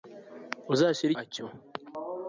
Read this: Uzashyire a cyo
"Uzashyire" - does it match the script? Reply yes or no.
yes